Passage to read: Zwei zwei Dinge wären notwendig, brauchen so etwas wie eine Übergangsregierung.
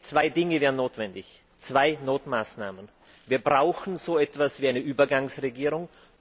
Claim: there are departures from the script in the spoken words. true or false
true